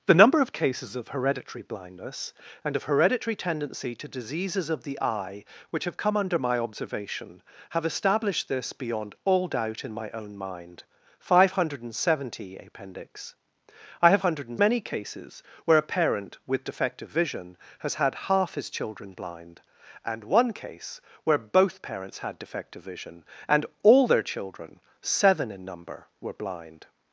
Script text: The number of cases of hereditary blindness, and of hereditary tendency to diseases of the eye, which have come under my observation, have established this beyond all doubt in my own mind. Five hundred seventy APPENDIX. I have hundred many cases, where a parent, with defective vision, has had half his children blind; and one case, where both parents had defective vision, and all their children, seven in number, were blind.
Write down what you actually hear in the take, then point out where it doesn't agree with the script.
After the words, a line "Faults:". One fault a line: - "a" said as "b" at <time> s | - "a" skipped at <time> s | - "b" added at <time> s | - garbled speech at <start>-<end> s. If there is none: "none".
The number of cases of hereditary blindness, and of hereditary tendency to diseases of the eye, which have come under my observation, have established this beyond all doubt in my own mind. Five hundred seventy APPENDIX. I have hundred many cases, where a parent, with defective vision, has had half his children blind; and one case, where both parents had defective vision, and all their children, seven in number, were blind.
Faults:
none